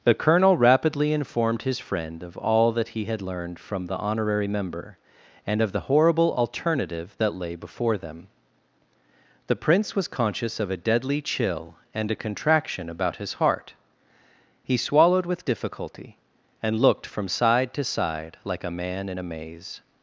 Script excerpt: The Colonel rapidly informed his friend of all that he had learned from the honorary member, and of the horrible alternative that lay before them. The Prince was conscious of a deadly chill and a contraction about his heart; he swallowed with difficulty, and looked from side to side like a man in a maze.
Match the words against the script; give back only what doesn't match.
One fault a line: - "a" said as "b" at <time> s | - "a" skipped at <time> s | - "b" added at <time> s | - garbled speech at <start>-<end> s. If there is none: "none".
none